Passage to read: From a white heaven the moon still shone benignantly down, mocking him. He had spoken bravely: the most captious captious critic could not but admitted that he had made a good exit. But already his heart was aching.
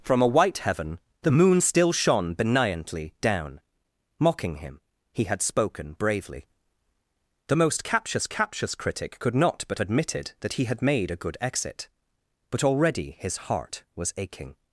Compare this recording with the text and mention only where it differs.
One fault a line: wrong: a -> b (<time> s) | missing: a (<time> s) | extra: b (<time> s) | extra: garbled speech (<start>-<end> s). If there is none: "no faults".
no faults